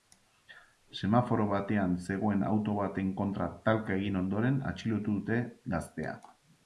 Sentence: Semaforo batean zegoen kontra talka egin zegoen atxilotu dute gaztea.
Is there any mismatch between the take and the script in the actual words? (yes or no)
yes